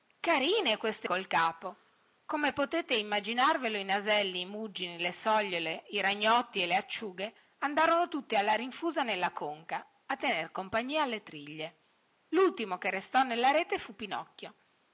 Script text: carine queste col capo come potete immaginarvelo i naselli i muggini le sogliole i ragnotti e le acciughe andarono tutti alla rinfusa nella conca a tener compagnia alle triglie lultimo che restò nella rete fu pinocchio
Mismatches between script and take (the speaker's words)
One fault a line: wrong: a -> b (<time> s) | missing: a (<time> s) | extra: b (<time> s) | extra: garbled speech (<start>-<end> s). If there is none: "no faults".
no faults